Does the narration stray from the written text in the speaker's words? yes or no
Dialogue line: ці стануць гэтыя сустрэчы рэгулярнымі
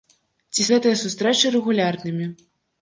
yes